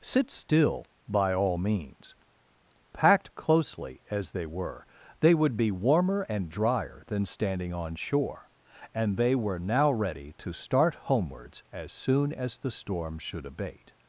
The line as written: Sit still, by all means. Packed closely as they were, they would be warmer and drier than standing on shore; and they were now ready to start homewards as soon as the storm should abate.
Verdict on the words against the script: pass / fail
pass